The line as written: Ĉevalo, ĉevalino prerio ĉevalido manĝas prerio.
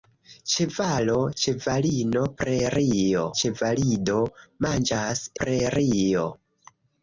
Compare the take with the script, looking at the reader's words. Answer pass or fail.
pass